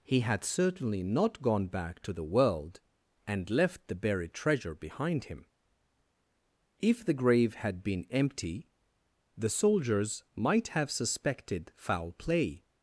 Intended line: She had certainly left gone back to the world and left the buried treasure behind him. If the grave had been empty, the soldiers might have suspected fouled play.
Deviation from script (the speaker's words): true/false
true